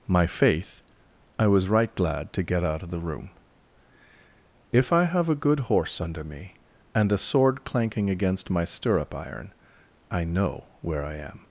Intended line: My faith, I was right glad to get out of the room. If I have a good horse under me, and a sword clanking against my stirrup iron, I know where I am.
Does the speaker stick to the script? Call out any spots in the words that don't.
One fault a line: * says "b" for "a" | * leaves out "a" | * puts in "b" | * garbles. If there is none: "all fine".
all fine